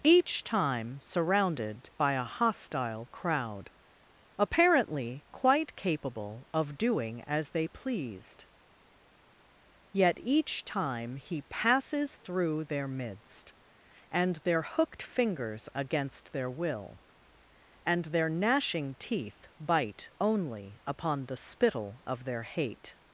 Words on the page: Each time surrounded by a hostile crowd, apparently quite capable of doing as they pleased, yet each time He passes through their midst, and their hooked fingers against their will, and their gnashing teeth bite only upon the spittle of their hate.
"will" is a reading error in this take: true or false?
false